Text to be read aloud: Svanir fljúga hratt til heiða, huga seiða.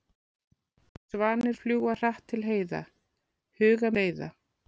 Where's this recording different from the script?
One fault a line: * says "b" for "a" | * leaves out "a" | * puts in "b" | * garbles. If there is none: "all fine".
all fine